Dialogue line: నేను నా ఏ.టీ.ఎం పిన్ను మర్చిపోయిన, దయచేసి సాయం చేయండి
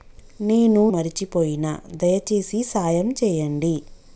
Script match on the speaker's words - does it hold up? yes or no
no